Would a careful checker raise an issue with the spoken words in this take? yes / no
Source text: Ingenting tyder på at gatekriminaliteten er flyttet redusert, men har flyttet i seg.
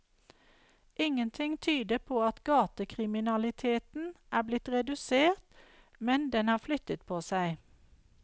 yes